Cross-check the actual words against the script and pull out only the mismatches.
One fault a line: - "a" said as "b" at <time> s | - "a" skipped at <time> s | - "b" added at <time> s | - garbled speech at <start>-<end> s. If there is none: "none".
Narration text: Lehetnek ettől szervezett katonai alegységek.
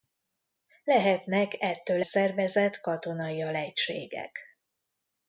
none